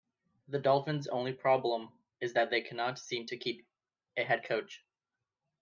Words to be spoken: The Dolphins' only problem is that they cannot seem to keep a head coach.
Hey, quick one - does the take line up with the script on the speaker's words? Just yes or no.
yes